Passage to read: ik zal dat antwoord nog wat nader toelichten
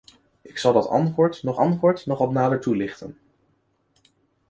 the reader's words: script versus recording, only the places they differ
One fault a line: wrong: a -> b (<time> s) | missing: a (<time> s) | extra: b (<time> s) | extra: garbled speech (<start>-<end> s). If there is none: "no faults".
extra: antwoord nog (1.5 s)